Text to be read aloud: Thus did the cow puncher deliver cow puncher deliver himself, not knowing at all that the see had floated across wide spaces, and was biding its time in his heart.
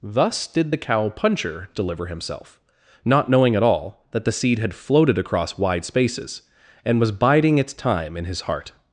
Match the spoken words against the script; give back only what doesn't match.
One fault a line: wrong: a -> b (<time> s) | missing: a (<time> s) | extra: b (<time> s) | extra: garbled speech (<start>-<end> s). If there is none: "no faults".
missing: cow puncher deliver (2.1 s)
wrong: see -> seed (4.3 s)